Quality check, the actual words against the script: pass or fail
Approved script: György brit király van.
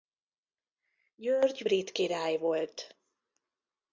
fail